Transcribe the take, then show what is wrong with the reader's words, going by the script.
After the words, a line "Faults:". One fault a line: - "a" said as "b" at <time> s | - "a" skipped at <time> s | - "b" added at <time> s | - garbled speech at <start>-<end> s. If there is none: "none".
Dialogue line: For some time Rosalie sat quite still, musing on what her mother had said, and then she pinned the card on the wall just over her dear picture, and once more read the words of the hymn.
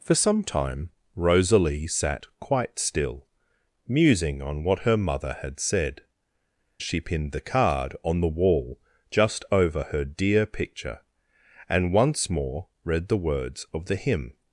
For some time Rosalie sat quite still, musing on what her mother had said, she pinned the card on the wall just over her dear picture, and once more read the words of the hymn.
Faults:
- "and then" skipped at 6.0 s